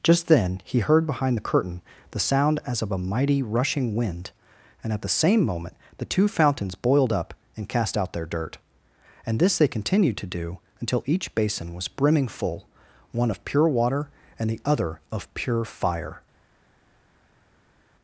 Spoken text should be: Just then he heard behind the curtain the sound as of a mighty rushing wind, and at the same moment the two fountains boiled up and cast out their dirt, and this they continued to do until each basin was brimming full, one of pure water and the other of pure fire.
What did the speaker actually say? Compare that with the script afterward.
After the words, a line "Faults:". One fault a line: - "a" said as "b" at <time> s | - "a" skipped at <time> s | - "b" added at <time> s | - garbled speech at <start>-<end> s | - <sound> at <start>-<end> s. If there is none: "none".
Just then he heard behind the curtain the sound as of a mighty rushing wind, and at the same moment the two fountains boiled up and cast out their dirt, and this they continued to do until each basin was brimming full, one of pure water and the other of pure fire.
Faults:
none